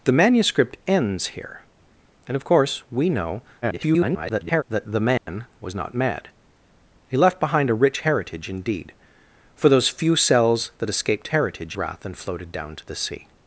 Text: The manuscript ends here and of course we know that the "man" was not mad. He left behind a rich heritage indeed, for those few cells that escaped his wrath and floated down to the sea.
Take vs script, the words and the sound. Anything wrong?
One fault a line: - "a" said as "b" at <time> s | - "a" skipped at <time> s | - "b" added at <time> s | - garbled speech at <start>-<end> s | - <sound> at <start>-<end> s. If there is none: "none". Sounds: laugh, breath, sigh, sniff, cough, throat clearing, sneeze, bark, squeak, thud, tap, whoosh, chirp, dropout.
- garbled speech at 3.6-4.6 s
- dropout at 5.2-5.3 s
- "his" said as "heritage" at 11.3 s